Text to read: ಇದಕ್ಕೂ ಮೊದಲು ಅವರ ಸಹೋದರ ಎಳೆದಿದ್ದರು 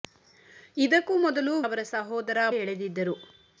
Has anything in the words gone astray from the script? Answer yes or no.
no